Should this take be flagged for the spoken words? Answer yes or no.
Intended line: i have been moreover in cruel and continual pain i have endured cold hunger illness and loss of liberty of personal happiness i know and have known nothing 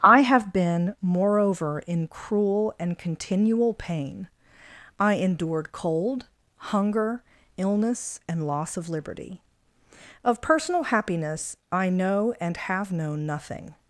yes